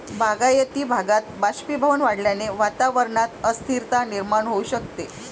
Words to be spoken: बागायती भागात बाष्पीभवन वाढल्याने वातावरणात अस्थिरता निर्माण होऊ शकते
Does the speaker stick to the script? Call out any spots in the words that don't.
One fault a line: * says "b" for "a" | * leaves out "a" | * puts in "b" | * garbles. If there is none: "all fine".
all fine